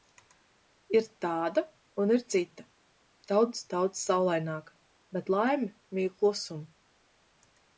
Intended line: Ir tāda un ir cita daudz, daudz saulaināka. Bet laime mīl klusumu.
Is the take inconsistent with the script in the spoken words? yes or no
no